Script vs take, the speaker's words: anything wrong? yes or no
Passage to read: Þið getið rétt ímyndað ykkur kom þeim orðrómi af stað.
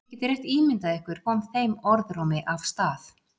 no